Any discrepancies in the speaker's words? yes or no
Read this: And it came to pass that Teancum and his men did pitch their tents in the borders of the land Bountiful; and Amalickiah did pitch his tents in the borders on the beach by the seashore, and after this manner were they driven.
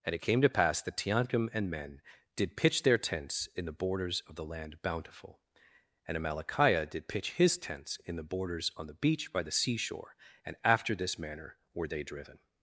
yes